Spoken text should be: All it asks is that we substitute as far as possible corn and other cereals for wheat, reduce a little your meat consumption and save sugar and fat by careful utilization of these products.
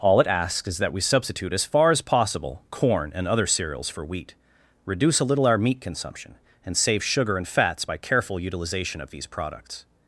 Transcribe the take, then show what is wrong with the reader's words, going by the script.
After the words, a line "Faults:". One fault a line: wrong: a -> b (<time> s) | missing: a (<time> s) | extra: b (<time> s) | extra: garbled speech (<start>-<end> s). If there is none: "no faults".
All it asks is that we substitute as far as possible corn and other cereals for wheat, reduce a little our meat consumption and save sugar and fats by careful utilization of these products.
Faults:
wrong: your -> our (5.5 s)
wrong: fat -> fats (7.5 s)